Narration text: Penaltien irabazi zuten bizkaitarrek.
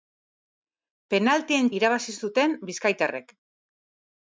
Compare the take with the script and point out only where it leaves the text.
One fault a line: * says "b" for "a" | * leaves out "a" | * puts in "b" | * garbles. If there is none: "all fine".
all fine